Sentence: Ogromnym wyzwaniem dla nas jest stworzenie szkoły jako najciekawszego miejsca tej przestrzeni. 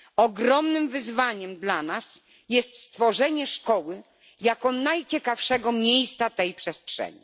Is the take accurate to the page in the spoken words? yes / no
yes